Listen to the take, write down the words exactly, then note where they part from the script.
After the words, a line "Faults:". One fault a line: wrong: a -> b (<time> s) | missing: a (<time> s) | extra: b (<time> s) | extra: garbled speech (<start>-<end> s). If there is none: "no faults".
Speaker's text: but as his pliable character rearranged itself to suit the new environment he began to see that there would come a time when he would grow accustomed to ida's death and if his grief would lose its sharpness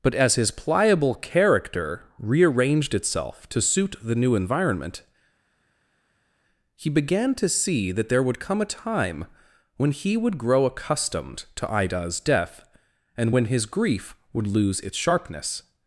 but as his pliable character rearranged itself to suit the new environment he began to see that there would come a time when he would grow accustomed to ida's death and when his grief would lose its sharpness
Faults:
wrong: if -> when (13.3 s)